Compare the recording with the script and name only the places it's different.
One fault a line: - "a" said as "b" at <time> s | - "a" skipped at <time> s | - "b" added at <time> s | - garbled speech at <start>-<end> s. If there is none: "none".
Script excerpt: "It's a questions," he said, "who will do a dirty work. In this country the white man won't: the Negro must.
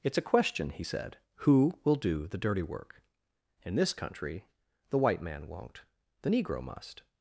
- "questions" said as "question" at 0.2 s
- "a" said as "the" at 2.3 s